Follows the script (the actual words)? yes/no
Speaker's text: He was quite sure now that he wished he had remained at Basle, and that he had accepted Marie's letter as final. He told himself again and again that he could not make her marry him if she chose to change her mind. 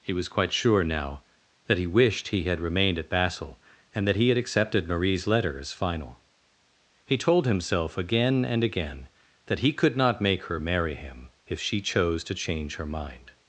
yes